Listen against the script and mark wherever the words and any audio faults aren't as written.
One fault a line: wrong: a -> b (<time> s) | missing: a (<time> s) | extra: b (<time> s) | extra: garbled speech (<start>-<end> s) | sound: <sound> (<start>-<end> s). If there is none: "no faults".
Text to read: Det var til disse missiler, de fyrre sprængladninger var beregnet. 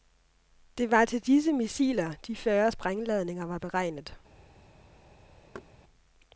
sound: thud (5.5-5.7 s)